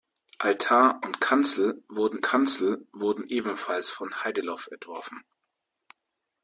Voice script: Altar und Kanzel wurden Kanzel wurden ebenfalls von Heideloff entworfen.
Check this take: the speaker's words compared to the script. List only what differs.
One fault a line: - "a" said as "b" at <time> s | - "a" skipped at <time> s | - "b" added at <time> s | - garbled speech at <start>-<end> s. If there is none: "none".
none